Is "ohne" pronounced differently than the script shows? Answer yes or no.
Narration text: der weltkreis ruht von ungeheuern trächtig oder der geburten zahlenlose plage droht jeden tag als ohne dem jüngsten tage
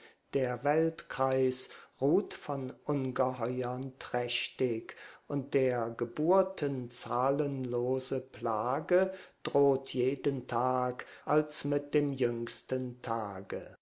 yes